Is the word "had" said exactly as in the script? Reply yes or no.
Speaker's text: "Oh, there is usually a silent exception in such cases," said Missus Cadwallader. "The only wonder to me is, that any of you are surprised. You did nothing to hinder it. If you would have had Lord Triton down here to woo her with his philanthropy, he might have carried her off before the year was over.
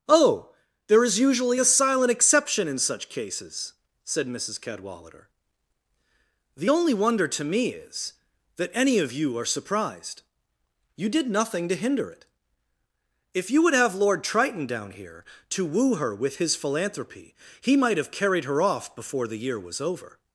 no